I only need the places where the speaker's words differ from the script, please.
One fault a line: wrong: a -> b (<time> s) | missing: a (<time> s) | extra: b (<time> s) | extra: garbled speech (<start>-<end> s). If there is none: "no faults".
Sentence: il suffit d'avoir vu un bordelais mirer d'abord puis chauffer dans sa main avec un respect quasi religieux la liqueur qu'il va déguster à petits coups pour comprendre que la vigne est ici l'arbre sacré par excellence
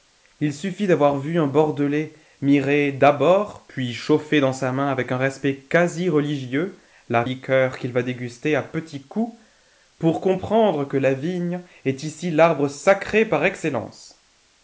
no faults